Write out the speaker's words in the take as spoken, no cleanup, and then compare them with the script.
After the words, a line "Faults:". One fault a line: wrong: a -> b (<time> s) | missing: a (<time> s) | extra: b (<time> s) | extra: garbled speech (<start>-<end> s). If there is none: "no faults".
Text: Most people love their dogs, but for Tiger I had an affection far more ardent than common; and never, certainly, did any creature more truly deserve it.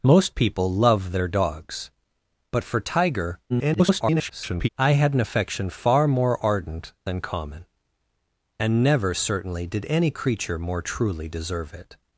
Most people love their dogs, but for Tiger [garbled] I had an affection far more ardent than common; and never, certainly, did any creature more truly deserve it.
Faults:
extra: garbled speech (3.5-4.7 s)